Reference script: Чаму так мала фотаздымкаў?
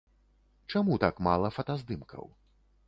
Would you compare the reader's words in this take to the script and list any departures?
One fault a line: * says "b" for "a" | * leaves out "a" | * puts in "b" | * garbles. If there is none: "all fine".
all fine